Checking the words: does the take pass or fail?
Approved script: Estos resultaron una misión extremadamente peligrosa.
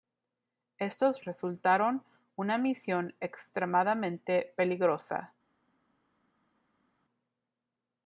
pass